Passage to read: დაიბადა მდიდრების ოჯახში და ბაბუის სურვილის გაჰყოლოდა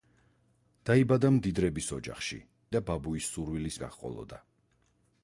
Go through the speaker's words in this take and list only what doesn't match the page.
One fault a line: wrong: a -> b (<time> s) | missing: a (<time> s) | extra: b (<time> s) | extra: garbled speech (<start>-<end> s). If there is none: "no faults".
no faults